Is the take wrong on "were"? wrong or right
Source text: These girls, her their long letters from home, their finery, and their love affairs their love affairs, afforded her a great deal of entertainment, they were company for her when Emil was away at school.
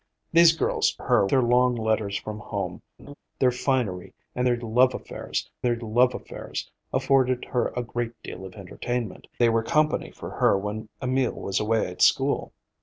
right